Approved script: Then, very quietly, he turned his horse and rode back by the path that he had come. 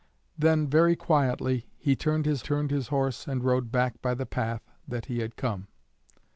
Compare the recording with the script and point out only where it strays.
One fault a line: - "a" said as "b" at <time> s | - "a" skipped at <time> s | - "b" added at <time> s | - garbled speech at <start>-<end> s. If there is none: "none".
- "turned his" added at 2.4 s